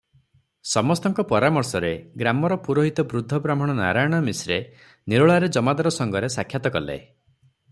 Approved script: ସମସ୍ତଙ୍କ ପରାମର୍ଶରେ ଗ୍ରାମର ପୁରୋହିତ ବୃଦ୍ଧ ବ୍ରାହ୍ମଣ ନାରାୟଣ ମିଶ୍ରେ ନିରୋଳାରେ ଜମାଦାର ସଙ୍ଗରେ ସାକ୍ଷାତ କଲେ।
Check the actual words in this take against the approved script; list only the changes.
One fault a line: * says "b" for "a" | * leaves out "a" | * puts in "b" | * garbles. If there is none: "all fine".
all fine